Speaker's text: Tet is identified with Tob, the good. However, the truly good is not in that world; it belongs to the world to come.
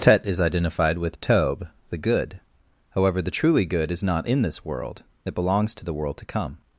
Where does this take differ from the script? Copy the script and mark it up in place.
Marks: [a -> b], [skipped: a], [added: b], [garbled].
Tet is identified with Tob, the good. However, the truly good is not in [that -> this] world; it belongs to the world to come.